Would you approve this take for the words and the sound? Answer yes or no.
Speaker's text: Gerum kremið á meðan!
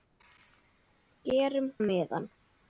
no